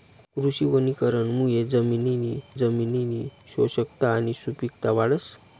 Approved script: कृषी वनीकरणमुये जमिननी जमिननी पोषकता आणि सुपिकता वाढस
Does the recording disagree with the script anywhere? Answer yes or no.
no